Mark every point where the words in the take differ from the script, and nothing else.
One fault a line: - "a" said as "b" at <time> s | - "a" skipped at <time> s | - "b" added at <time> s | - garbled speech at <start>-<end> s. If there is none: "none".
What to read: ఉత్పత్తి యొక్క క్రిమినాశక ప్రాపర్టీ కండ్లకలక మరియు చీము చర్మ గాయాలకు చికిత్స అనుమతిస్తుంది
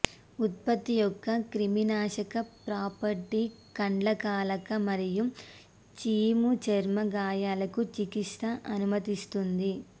none